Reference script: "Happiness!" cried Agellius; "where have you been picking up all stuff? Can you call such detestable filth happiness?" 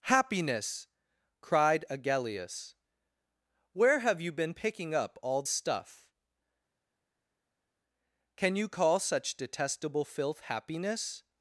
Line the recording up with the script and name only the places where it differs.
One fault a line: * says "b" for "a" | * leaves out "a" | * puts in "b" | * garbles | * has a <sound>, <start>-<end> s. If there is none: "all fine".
all fine